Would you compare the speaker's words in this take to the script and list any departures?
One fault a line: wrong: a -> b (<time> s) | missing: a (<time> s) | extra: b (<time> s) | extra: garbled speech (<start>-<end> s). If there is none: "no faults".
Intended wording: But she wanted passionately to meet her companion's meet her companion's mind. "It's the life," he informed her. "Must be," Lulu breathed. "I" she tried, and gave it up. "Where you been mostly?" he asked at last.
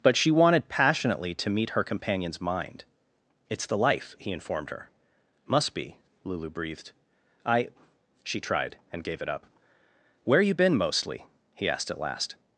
missing: meet her companion's (2.4 s)